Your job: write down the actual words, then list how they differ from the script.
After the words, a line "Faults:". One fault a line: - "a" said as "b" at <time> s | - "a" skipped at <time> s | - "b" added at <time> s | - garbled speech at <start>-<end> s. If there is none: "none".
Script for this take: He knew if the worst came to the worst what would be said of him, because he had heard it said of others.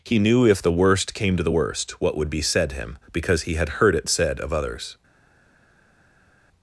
He knew if the worst came to the worst what would be said him, because he had heard it said of others.
Faults:
- "of" skipped at 2.7 s